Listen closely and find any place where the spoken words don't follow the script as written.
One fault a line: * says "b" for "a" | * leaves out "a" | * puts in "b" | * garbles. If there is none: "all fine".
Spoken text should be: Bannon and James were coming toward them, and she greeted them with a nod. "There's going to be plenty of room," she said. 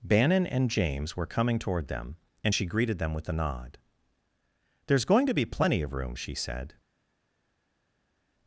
all fine